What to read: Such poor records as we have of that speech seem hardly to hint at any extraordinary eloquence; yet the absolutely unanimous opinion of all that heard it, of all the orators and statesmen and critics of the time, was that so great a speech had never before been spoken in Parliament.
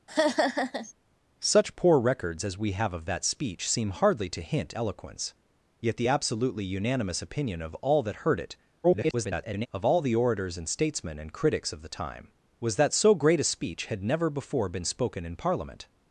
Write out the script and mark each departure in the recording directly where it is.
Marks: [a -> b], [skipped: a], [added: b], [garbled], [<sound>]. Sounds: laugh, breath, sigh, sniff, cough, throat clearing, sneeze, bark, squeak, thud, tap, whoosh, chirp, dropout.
[laugh] Such poor records as we have of that speech seem hardly to hint [skipped: at any extraordinary] eloquence; yet the absolutely unanimous opinion of all that heard it, [garbled] of all the orators and statesmen and critics of the time, was that so great a speech had never before been spoken in Parliament.